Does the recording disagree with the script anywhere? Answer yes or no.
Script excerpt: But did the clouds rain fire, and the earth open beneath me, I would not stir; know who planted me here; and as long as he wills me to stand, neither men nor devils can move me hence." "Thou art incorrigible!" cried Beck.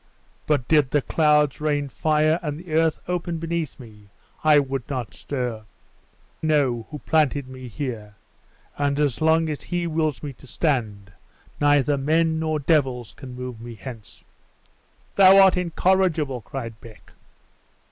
no